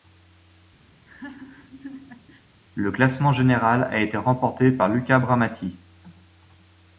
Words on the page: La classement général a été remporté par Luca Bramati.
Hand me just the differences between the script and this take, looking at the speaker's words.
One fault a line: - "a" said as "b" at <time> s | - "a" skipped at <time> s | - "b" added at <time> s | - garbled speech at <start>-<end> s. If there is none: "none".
- "La" said as "Le" at 2.7 s